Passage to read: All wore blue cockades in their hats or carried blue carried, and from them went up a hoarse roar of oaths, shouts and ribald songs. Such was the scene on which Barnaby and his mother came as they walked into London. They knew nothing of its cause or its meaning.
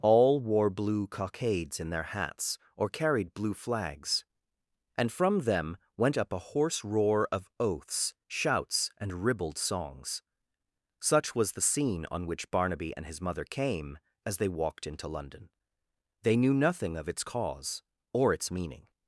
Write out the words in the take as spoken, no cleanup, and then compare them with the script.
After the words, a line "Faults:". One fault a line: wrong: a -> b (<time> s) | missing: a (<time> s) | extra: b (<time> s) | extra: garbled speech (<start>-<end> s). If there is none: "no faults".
All wore blue cockades in their hats or carried blue flags, and from them went up a hoarse roar of oaths, shouts and ribald songs. Such was the scene on which Barnaby and his mother came as they walked into London. They knew nothing of its cause or its meaning.
Faults:
wrong: carried -> flags (3.5 s)